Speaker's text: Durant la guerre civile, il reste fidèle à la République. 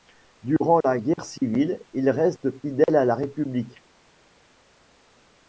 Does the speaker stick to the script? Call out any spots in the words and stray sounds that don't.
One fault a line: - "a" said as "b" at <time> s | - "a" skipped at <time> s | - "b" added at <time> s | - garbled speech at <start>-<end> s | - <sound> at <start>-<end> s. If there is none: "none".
none